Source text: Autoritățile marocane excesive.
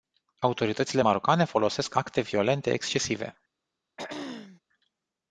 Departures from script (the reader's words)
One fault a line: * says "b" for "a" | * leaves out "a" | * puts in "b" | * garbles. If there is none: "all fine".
* puts in "folosesc acte violente"